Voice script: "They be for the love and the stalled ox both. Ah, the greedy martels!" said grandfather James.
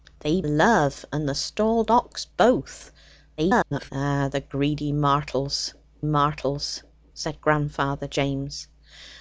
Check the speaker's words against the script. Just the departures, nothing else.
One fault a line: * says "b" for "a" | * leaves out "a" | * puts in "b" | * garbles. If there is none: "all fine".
* leaves out "be for the"
* garbles
* puts in "martels"